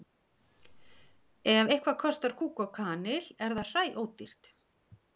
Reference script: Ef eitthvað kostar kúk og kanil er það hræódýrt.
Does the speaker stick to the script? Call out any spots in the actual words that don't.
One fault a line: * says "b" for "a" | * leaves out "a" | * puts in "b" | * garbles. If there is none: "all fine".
all fine